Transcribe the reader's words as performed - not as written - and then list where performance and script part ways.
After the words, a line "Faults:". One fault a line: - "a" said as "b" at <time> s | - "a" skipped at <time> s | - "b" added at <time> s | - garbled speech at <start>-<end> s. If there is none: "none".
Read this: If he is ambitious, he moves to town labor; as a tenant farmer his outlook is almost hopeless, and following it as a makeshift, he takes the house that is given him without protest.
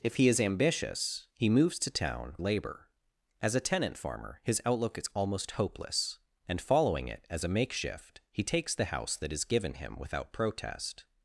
If he is ambitious, he moves to town labor; as a tenant farmer his outlook is almost hopeless, and following it as a makeshift, he takes the house that is given him without protest.
Faults:
none